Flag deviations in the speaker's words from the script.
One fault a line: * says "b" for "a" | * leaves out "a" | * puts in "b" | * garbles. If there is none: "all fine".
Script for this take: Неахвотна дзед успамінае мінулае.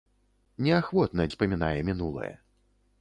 * leaves out "дзед"